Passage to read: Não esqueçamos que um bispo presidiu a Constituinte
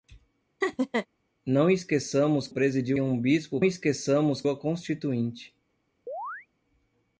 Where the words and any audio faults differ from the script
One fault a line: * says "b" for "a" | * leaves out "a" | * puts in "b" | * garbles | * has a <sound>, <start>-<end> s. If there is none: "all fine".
* has a laugh, 0.6-1.1 s
* says "presidiu" for "que"
* says "esqueçamos" for "presidiu"
* has a chirp, 6.1-6.5 s